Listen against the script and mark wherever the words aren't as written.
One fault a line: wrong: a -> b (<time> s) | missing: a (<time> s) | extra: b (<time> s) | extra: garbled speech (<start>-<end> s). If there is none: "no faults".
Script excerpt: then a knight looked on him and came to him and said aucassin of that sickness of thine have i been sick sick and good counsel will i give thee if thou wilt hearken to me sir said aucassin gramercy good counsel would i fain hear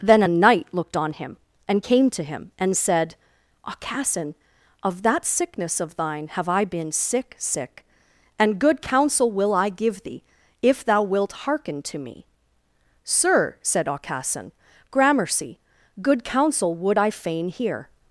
no faults